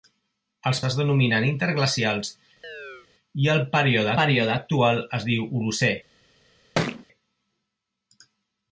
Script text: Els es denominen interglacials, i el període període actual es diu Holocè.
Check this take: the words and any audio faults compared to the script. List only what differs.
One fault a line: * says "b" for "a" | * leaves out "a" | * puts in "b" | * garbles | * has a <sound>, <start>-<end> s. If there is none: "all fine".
* has a chirp, 2.6-3.1 s
* has a thud, 6.8-7.1 s